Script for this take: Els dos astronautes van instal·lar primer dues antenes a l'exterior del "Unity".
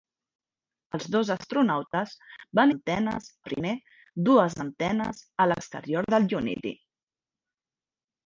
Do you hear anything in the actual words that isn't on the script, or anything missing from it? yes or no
yes